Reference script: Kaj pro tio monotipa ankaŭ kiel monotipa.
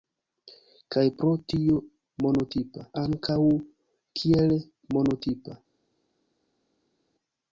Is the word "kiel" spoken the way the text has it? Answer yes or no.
yes